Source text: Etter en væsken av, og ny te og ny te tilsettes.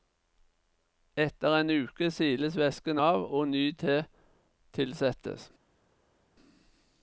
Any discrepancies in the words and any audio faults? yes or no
yes